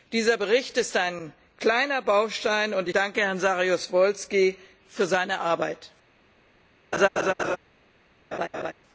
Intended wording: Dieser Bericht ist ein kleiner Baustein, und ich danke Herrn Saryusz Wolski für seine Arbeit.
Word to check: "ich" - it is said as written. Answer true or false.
false